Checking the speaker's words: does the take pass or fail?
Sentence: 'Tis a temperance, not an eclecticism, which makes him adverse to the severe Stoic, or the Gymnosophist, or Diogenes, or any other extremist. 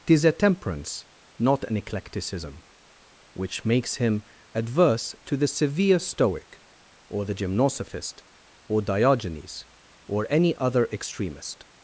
pass